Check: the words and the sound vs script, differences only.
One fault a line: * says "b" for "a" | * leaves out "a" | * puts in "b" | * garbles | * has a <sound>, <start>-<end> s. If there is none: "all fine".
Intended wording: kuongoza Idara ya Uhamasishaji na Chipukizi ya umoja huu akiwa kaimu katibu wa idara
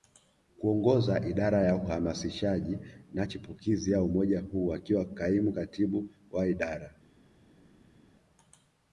all fine